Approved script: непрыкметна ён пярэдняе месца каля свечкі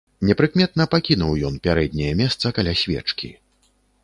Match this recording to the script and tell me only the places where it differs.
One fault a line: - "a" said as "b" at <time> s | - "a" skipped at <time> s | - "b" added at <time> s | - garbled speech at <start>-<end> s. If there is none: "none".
- "пакінуў" added at 0.9 s